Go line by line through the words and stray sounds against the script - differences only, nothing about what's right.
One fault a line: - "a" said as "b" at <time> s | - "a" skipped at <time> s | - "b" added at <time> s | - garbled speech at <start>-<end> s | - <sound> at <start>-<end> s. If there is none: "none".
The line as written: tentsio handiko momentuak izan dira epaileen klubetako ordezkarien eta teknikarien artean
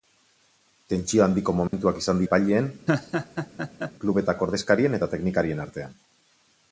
- dropout at 1.7-1.7 s
- "dira" skipped at 2.2 s
- laugh at 2.9-3.9 s